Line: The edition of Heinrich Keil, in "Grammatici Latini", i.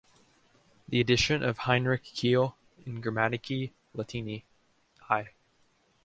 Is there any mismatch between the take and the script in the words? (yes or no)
no